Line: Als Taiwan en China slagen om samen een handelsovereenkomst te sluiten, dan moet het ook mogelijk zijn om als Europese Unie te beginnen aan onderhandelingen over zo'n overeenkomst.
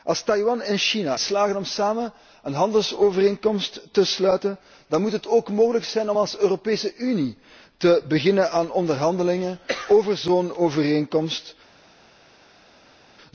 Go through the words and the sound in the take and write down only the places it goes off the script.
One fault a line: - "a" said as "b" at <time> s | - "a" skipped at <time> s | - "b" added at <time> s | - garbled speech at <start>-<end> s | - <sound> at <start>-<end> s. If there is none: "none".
none